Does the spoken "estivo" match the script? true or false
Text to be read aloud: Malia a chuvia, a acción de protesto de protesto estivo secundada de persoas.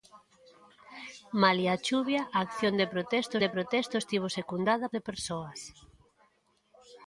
true